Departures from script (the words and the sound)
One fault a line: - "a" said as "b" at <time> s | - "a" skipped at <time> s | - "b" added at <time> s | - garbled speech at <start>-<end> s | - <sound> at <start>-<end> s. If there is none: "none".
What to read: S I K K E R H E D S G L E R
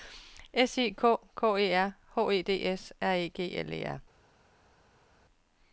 - "R E" added at 3.0 s